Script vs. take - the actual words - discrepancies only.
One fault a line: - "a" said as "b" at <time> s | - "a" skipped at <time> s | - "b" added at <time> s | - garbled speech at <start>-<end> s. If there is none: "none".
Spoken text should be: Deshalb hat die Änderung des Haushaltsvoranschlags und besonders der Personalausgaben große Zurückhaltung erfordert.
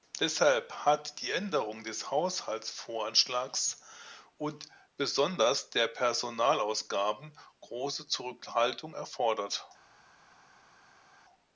none